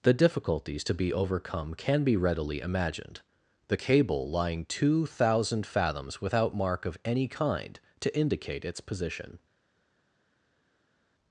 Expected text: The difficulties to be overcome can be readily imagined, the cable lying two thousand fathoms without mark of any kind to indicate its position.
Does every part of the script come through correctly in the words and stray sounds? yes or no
yes